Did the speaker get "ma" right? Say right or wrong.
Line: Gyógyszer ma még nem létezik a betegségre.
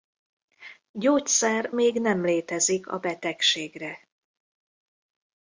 wrong